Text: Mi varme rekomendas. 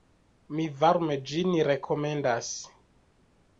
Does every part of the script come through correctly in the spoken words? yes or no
no